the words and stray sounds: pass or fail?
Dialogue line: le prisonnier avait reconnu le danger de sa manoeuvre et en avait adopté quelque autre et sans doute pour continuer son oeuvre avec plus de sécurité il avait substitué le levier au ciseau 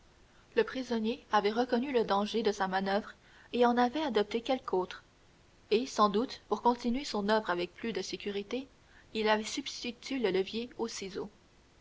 pass